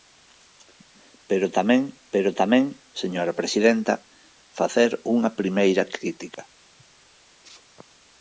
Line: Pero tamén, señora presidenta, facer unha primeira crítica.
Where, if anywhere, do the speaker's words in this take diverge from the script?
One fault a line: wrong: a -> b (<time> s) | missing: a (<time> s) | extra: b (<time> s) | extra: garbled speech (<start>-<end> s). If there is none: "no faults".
extra: pero tamén (2.1 s)